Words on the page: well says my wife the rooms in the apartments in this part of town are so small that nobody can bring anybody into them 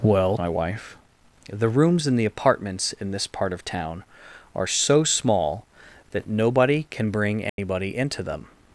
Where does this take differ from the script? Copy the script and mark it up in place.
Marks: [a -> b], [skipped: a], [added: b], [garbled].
well [skipped: says] my wife the rooms in the apartments in this part of town are so small that nobody can bring anybody into them